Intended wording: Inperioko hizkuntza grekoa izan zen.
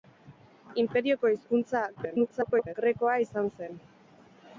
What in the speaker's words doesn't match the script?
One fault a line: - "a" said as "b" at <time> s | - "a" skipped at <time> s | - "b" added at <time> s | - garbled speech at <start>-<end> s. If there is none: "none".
- garbled speech at 1.9-2.7 s